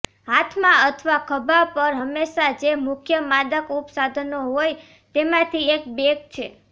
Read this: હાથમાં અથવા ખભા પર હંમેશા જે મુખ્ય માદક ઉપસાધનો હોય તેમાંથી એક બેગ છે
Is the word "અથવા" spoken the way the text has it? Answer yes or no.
yes